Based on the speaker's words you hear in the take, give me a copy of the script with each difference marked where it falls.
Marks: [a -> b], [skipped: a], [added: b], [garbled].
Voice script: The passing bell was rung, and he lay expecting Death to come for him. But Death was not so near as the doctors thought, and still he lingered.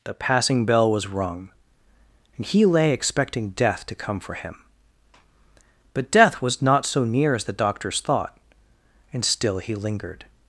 The passing bell was rung, and he lay expecting Death to come for him. But Death was not so near as the doctors thought, and still he lingered.